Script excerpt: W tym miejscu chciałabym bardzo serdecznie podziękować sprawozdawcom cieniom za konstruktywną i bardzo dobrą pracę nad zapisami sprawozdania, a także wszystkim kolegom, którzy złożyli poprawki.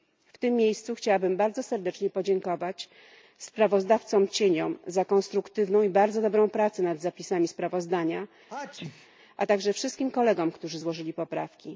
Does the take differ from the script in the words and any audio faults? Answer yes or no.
yes